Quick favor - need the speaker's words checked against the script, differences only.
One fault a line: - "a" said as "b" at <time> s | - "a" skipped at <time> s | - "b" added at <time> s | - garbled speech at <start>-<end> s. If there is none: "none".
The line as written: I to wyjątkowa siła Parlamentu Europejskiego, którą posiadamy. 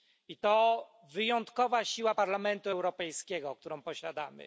none